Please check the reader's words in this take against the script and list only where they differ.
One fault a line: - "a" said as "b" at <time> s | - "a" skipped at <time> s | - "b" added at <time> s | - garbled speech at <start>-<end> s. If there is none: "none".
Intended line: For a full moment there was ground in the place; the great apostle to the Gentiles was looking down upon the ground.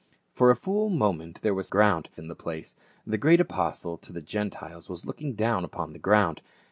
none